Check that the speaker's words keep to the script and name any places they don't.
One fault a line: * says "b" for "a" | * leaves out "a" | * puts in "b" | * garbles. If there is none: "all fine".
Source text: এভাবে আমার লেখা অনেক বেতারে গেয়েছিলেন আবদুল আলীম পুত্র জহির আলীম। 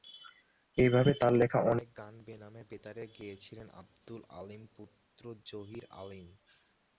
* says "তার" for "আমার"
* puts in "গান বেনামে"